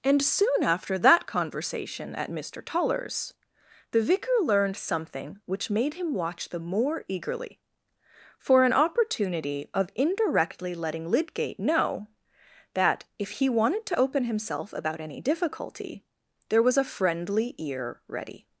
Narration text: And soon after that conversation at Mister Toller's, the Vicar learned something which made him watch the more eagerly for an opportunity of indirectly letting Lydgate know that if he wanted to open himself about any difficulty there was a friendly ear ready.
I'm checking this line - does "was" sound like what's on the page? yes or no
yes